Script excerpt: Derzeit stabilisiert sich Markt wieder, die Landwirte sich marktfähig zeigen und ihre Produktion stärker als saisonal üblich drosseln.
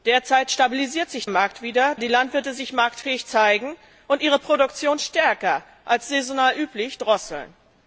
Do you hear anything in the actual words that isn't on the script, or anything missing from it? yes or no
no